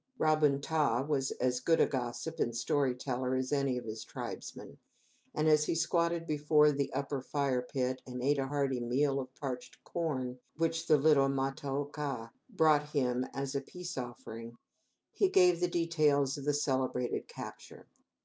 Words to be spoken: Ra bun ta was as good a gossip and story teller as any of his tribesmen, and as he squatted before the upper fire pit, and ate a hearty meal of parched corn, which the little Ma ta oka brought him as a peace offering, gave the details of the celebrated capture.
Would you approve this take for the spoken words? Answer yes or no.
no